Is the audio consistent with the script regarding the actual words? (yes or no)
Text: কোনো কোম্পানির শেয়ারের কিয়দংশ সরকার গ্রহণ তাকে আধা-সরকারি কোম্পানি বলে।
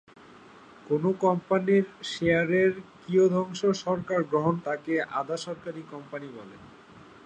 yes